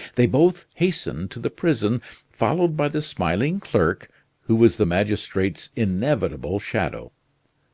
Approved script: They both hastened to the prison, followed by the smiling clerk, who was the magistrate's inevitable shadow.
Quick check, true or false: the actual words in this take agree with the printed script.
true